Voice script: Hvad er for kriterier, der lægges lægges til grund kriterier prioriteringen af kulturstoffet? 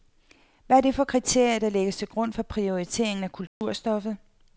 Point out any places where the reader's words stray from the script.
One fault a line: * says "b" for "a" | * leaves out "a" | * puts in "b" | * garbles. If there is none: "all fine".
* puts in "det"
* leaves out "lægges"
* says "for" for "kriterier"